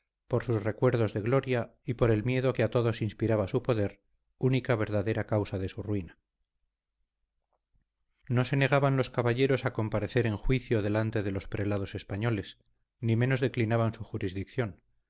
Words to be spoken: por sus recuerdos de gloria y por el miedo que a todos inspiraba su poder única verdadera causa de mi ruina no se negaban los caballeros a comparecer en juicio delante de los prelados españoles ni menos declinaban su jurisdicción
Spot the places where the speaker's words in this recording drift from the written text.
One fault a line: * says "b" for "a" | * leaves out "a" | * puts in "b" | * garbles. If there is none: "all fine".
* says "su" for "mi"